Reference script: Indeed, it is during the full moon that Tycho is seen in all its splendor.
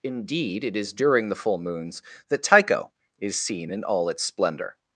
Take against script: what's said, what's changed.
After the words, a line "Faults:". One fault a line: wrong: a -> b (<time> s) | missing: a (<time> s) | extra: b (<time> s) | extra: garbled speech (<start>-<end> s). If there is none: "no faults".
Indeed, it is during the full moons that Tycho is seen in all its splendor.
Faults:
wrong: moon -> moons (1.6 s)